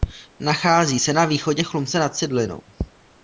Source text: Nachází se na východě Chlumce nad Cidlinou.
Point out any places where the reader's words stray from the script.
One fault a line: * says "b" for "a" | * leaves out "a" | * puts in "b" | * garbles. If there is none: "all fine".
all fine